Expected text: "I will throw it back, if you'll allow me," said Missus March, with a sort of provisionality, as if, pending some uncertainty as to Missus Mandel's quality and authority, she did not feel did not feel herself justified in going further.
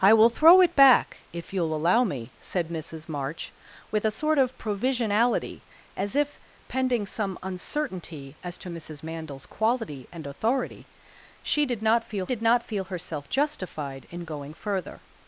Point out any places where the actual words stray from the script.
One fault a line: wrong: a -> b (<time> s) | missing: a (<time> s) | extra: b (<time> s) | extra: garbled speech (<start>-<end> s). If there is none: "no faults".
no faults